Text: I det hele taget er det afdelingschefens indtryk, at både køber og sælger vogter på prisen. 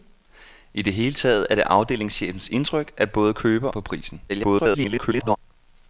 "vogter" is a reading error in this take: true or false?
true